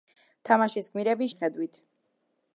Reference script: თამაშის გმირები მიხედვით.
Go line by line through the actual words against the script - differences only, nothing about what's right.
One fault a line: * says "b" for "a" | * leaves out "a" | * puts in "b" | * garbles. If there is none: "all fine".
all fine